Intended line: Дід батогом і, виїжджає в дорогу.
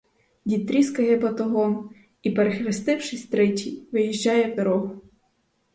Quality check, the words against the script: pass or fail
fail